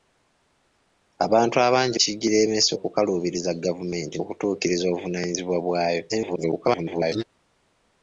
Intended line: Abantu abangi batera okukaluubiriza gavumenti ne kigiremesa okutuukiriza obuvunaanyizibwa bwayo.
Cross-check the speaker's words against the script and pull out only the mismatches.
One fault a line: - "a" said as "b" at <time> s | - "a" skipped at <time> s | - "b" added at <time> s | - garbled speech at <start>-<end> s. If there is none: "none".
- "batera" said as "kigiremesa" at 2.0 s
- "ne kigiremesa" skipped at 4.2 s
- garbled speech at 6.1-7.2 s